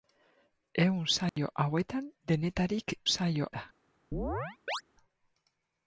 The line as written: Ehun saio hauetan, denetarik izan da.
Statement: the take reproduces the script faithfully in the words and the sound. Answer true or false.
false